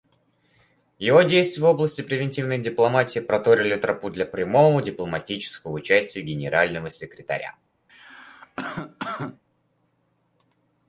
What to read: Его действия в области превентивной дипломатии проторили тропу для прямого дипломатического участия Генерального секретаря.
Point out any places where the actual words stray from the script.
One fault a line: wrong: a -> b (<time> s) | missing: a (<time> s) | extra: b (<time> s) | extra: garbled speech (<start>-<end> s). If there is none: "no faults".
no faults